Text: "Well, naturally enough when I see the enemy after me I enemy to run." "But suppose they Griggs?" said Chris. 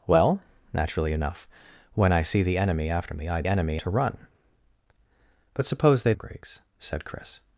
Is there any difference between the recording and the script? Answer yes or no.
no